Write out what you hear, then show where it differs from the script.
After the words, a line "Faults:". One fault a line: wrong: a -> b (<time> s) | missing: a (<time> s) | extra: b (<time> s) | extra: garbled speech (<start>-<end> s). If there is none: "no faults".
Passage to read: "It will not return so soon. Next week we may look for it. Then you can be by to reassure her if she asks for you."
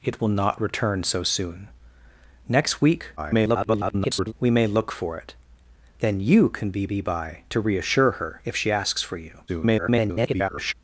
"It will not return so soon. Next week [garbled] we may look for it. Then you can be be by to reassure her if she asks for you." [garbled]
Faults:
extra: garbled speech (3.2-4.3 s)
extra: be (6.9 s)
extra: garbled speech (9.5-10.7 s)